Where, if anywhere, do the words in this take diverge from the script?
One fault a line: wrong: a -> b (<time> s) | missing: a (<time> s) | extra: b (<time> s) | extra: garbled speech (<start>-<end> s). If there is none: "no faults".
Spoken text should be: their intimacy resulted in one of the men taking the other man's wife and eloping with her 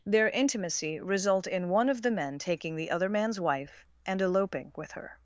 wrong: resulted -> result (1.0 s)